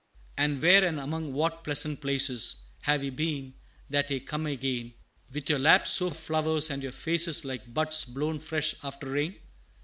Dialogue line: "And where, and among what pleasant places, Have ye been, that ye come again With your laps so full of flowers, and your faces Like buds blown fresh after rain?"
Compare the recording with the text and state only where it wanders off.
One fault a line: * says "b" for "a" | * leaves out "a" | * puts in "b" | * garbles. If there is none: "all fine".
* leaves out "full"